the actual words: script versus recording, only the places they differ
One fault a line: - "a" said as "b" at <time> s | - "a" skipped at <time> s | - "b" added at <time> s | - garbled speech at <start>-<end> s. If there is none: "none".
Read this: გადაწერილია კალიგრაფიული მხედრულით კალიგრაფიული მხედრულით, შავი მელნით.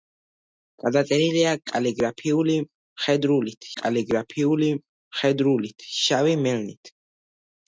none